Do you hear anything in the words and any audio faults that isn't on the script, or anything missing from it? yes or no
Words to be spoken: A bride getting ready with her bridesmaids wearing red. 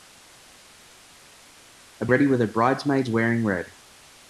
yes